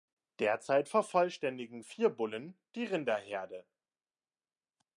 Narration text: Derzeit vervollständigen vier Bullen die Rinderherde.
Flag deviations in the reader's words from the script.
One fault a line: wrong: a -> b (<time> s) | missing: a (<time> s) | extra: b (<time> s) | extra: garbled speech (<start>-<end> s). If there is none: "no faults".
no faults